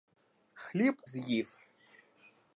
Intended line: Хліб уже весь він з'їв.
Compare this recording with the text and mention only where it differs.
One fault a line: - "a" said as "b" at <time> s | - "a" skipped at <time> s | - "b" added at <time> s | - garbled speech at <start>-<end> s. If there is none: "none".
- "уже весь він" skipped at 1.0 s